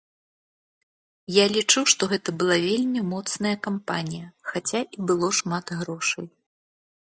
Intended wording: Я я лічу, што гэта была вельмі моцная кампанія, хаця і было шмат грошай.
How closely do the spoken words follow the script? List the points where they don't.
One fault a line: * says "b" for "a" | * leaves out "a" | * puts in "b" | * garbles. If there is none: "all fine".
* leaves out "я"